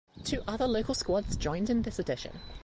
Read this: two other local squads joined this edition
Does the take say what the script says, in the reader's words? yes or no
no